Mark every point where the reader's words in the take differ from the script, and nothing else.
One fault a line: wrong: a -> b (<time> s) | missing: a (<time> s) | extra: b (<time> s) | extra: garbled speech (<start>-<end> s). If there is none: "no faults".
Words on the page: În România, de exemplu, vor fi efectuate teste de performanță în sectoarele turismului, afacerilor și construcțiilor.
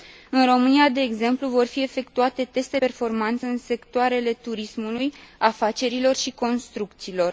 missing: de (2.8 s)